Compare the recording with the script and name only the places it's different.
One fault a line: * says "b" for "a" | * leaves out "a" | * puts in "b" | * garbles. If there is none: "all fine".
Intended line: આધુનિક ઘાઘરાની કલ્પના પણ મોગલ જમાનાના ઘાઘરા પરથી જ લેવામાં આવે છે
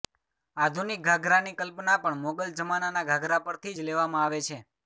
all fine